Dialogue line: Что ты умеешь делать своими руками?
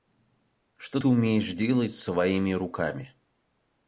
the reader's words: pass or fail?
pass